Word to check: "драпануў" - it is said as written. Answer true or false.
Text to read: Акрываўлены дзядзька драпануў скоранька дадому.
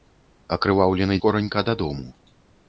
false